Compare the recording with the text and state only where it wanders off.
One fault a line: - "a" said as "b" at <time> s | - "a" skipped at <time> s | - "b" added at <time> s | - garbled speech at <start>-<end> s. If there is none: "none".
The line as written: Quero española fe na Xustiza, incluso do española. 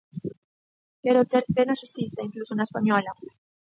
- "española" said as "ter" at 1.3 s
- "do" said as "na" at 2.5 s